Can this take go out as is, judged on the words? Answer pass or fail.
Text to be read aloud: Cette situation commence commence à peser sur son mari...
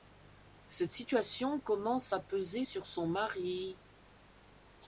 fail